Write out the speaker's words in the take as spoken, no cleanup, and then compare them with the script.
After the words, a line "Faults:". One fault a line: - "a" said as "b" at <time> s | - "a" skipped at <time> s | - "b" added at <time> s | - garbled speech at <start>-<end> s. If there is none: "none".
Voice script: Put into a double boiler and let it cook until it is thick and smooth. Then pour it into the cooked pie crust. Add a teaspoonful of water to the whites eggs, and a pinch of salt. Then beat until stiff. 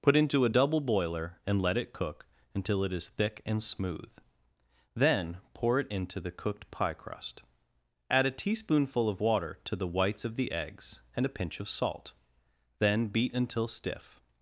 Put into a double boiler and let it cook until it is thick and smooth. Then pour it into the cooked pie crust. Add a teaspoonful of water to the whites of the eggs, and a pinch of salt. Then beat until stiff.
Faults:
- "of the" added at 10.2 s